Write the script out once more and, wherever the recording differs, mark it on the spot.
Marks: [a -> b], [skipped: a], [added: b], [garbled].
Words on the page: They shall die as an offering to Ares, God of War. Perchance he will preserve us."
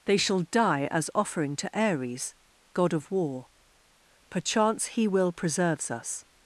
They shall die as [skipped: an] offering to Ares, God of War. Perchance he will [preserve -> preserves] us."